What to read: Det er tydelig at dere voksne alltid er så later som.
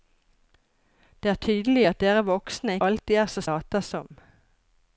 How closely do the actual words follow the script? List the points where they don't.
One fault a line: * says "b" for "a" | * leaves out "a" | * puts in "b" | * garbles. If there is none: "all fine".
all fine